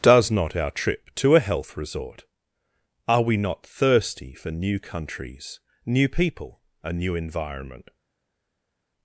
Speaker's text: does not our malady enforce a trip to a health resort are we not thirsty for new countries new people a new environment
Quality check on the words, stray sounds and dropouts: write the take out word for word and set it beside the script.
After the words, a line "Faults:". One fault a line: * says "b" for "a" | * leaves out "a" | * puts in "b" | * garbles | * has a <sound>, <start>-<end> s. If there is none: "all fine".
does not our trip to a health resort are we not thirsty for new countries new people a new environment
Faults:
* leaves out "malady enforce a"